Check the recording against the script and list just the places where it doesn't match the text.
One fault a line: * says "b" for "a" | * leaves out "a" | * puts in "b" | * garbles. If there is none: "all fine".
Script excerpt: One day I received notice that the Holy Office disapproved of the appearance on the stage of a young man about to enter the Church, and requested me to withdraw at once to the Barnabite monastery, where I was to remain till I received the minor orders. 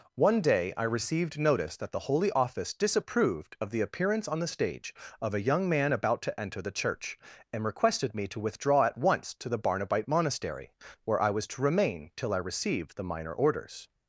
all fine